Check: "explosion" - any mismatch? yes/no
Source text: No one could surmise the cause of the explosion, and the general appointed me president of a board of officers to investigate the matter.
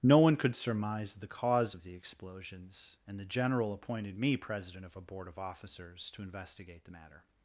yes